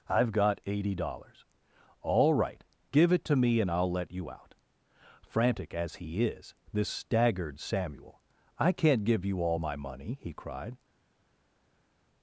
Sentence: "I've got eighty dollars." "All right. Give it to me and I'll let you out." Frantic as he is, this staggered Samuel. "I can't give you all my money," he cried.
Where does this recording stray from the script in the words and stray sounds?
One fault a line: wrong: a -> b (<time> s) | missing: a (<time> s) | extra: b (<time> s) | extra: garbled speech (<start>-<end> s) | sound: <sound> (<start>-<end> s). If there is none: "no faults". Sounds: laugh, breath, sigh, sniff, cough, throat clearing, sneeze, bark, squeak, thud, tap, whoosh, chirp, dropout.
no faults